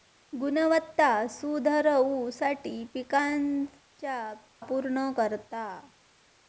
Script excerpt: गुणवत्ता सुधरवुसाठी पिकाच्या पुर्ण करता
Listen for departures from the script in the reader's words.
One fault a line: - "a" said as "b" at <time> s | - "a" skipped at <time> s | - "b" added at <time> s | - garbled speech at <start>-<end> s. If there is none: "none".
none